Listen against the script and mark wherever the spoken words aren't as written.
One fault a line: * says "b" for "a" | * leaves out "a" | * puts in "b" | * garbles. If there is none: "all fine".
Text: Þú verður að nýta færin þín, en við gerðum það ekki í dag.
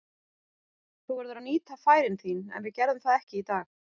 all fine